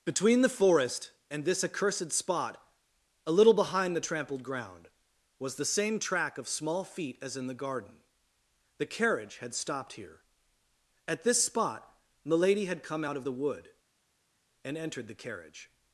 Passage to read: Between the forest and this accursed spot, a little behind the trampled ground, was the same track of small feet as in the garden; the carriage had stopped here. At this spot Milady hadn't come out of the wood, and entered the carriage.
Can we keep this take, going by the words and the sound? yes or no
no